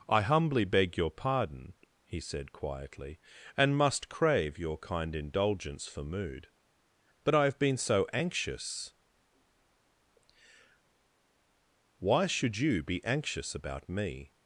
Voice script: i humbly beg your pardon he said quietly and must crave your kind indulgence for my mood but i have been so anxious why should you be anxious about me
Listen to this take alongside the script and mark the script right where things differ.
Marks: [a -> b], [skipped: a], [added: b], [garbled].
i humbly beg your pardon he said quietly and must crave your kind indulgence for [skipped: my] mood but i have been so anxious why should you be anxious about me